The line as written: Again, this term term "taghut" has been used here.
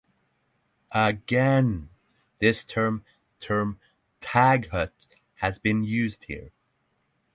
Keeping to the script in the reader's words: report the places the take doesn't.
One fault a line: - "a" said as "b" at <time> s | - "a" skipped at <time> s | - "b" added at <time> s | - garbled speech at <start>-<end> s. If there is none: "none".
none